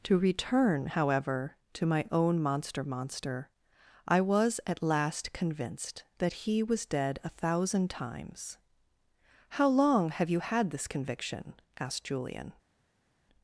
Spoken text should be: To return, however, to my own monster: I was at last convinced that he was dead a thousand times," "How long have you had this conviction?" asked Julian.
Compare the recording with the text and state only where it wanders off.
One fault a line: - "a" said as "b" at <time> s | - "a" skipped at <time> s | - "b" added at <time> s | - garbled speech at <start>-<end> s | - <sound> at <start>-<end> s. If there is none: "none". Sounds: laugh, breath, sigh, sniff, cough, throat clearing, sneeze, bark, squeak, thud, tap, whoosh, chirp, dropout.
- "monster" added at 2.8 s